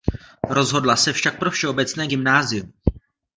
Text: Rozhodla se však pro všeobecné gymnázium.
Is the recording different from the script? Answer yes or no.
no